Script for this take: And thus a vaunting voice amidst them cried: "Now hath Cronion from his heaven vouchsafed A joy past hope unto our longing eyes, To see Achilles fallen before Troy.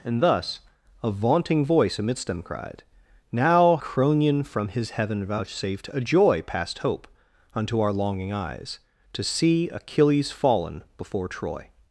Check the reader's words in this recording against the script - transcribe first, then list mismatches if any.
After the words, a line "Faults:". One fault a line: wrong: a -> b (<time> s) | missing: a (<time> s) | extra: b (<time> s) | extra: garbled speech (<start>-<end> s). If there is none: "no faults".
And thus a vaunting voice amidst them cried: "Now Cronion from his heaven vouchsafed A joy past hope unto our longing eyes, To see Achilles fallen before Troy.
Faults:
missing: hath (3.8 s)